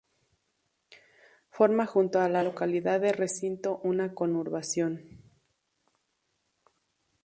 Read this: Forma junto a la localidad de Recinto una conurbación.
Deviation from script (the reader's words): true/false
false